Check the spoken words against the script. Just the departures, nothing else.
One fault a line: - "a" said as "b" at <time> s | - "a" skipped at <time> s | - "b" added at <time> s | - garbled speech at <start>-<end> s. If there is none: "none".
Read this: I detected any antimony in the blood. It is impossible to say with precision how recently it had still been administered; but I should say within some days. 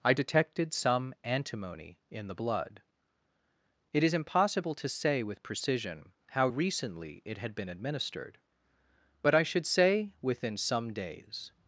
- "any" said as "some" at 0.7 s
- "still" skipped at 7.5 s